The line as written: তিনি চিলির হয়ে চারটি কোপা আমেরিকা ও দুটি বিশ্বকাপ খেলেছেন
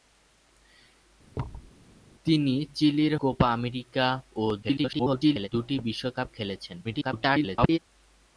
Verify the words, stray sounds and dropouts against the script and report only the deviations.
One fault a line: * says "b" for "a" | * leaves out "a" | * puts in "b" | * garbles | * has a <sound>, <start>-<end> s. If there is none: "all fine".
* has a thud, 1.3-1.7 s
* leaves out "হয়ে চারটি"
* garbles
* garbles